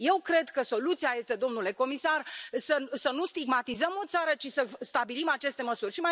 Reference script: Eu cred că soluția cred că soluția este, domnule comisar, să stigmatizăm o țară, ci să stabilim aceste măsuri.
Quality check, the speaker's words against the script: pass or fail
fail